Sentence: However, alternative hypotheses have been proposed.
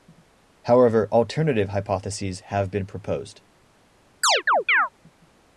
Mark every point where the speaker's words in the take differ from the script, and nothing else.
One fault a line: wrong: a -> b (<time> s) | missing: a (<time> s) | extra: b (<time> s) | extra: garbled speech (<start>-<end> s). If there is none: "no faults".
no faults